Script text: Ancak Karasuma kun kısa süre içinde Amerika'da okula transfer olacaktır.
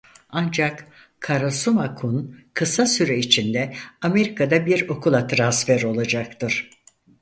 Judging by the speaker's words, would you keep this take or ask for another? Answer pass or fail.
fail